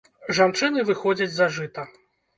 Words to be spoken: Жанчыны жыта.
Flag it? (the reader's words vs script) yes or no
yes